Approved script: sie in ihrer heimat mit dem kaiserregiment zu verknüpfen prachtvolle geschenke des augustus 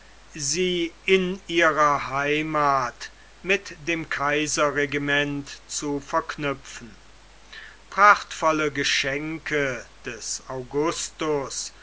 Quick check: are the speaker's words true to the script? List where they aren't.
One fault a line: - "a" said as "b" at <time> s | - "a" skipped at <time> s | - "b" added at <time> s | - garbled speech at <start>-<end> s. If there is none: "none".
none